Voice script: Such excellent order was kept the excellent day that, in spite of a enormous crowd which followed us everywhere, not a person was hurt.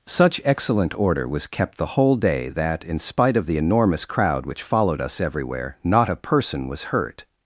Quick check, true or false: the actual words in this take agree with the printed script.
false